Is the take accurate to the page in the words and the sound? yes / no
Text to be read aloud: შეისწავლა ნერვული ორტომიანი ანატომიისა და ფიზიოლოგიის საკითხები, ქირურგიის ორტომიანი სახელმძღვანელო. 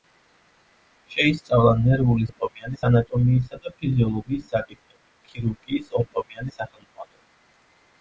yes